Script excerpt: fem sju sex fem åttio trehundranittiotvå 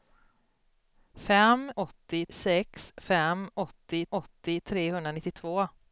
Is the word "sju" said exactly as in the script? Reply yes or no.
no